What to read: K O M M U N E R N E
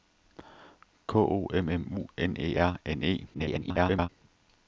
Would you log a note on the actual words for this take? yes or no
yes